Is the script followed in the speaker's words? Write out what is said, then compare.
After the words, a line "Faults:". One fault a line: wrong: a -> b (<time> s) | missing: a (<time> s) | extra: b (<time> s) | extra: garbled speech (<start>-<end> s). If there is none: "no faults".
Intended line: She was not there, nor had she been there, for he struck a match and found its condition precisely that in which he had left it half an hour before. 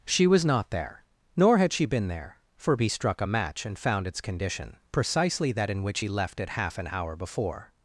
She was not there, nor had she been there, for he struck a match and found its condition precisely that in which he left it half an hour before.
Faults:
missing: had (6.1 s)